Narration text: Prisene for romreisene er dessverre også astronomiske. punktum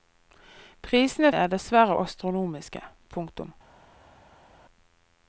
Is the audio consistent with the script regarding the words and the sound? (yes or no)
no